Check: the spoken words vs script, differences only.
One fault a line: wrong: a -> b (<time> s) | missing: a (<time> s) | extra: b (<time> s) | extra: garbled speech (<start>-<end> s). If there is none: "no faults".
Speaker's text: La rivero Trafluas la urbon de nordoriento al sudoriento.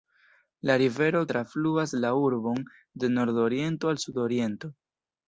no faults